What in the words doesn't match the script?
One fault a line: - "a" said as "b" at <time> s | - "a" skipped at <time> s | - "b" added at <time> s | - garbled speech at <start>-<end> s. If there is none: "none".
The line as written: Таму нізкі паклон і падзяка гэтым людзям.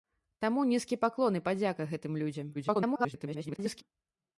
- garbled speech at 2.5-3.8 s